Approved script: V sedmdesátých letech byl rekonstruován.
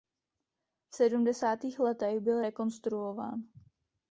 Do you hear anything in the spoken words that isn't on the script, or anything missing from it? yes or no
no